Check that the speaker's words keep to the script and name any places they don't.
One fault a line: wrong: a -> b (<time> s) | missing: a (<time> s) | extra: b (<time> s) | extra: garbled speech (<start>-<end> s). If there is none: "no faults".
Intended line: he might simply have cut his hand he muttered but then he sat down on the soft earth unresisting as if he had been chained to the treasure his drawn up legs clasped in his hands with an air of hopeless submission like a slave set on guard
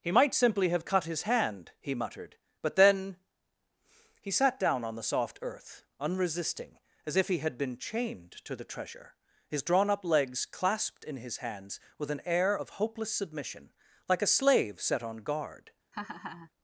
no faults